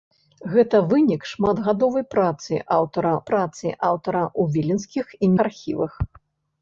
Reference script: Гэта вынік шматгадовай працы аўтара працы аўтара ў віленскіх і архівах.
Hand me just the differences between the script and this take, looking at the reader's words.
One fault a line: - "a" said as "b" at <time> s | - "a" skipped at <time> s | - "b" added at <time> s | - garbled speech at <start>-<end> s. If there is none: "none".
none